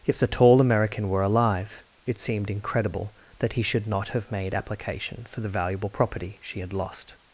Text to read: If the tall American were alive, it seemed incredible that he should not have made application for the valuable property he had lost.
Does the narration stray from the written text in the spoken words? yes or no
yes